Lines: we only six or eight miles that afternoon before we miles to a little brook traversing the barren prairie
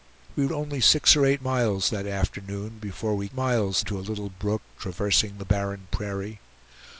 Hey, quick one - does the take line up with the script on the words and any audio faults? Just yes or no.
yes